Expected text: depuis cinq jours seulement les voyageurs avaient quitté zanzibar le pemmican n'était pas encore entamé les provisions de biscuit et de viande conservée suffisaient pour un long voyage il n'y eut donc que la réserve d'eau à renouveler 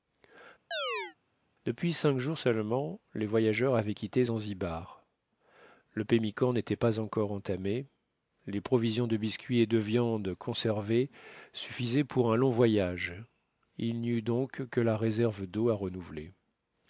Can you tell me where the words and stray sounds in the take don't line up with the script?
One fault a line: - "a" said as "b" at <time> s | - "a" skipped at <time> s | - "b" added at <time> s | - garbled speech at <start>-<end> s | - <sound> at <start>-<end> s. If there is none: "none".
- chirp at 0.7-1.2 s